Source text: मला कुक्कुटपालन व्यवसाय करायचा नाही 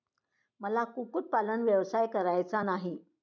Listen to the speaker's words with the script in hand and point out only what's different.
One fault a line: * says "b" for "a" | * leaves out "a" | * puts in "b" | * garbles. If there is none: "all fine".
all fine